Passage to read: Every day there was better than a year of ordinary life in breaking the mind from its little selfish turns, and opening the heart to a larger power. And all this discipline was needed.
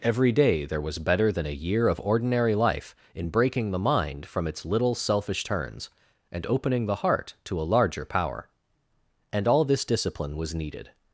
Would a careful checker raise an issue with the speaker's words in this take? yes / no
no